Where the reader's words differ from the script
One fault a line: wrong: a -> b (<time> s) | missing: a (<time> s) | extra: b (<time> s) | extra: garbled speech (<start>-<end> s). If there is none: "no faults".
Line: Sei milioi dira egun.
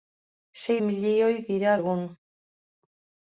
no faults